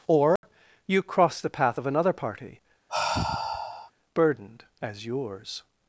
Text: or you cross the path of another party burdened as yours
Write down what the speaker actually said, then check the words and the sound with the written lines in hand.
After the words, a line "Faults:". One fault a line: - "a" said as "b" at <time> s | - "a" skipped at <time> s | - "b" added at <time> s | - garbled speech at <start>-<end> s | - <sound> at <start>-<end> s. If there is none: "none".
or you cross the path of another party burdened as yours
Faults:
- dropout at 0.4-0.4 s
- sigh at 2.9-3.9 s